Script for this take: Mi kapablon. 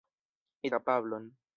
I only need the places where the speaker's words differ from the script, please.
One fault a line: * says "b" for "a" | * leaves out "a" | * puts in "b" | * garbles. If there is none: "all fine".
all fine